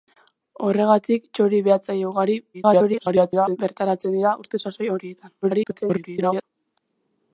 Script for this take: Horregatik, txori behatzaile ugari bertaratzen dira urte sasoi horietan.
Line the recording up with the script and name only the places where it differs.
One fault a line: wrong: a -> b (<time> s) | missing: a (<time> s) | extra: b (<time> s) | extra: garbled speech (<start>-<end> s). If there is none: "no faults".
extra: garbled speech (2.5-3.6 s)
extra: garbled speech (5.4-6.4 s)